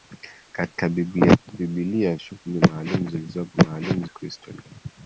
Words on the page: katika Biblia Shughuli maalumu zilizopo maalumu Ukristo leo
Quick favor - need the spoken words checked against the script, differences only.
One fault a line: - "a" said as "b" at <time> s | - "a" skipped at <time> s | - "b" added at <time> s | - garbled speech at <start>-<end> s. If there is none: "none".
none